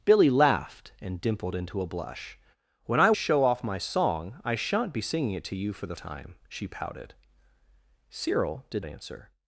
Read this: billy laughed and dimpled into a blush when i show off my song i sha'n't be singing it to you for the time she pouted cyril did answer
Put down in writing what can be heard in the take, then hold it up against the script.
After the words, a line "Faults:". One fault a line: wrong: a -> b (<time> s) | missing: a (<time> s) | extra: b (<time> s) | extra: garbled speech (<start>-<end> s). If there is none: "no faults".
billy laughed and dimpled into a blush when i show off my song i sha'n't be singing it to you for the time she pouted cyril did answer
Faults:
no faults